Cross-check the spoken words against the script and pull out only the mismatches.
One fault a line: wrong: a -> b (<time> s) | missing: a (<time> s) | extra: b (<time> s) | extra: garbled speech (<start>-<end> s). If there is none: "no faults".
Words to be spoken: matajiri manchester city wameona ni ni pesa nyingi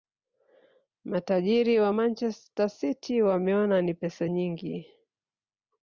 extra: wa (1.8 s)
missing: ni (3.9 s)